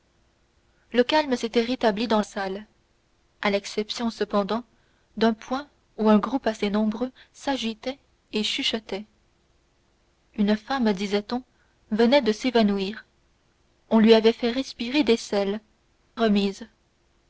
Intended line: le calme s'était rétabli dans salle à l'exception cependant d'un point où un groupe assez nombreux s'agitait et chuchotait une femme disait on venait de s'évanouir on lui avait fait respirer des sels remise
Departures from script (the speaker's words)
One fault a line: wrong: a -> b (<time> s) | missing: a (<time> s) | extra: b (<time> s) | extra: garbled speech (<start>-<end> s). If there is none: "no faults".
no faults